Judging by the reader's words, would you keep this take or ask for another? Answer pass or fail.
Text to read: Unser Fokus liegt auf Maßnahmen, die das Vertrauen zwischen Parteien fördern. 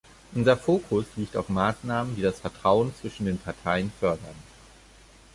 fail